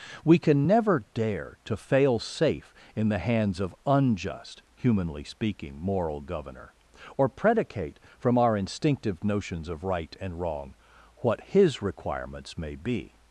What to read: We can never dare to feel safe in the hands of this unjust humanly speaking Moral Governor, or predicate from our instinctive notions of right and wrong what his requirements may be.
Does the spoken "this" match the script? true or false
false